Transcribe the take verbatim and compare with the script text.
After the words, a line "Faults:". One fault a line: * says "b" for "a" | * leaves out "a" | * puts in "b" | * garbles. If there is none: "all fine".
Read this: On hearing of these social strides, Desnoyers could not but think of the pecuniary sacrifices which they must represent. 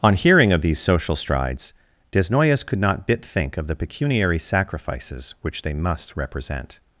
On hearing of these social strides, Desnoyers could not bit think of the pecuniary sacrifices which they must represent.
Faults:
* says "bit" for "but"